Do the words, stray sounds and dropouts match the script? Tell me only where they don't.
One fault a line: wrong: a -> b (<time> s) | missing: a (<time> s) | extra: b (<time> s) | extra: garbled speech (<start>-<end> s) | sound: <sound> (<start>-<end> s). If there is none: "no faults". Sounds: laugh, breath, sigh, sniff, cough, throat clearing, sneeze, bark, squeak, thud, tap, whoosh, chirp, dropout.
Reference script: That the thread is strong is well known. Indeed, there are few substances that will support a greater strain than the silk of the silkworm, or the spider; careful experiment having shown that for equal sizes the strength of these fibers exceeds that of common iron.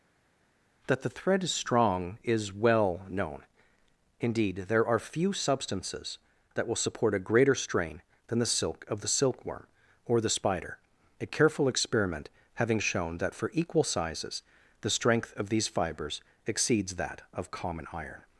extra: a (11.2 s)